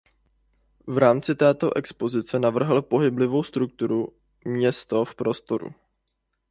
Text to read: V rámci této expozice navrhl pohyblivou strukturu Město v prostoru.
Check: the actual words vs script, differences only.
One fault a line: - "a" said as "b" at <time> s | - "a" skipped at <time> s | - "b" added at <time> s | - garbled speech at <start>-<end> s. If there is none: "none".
none